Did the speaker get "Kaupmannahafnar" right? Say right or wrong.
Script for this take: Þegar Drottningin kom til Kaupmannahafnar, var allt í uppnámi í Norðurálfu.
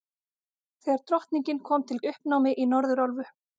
wrong